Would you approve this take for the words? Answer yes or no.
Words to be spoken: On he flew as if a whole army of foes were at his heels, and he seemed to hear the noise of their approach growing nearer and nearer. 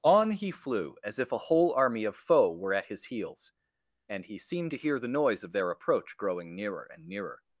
no